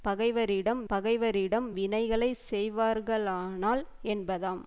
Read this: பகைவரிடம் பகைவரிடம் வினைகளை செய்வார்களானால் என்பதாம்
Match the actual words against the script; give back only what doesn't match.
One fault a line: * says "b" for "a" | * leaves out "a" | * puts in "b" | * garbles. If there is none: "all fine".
all fine